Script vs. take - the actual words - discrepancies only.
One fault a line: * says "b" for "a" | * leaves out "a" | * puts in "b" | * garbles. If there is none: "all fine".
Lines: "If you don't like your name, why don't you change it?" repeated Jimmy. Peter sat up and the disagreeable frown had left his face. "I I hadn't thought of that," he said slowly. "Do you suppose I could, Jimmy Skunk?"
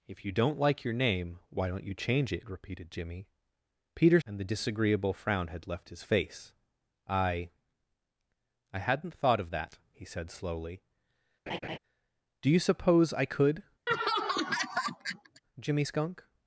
* leaves out "sat up"